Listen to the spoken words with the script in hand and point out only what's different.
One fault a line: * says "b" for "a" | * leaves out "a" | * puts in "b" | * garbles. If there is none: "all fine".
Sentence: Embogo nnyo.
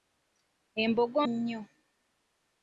all fine